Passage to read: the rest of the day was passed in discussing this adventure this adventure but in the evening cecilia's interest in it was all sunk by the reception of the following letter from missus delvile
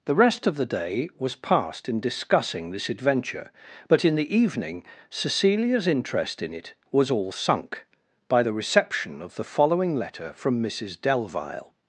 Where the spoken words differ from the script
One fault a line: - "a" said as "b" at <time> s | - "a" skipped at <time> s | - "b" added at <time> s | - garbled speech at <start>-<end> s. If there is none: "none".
- "this adventure" skipped at 3.5 s